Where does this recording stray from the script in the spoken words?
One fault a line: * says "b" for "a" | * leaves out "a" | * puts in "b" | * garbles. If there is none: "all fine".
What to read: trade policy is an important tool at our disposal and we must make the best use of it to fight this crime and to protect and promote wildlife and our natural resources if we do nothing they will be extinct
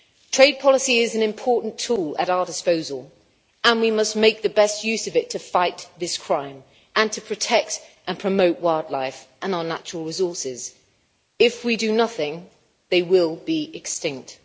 all fine